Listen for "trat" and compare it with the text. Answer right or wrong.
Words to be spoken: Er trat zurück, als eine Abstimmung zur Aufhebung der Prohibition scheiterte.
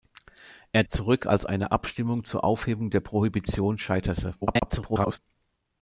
wrong